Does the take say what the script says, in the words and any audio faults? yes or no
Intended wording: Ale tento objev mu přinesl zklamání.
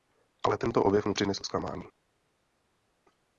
yes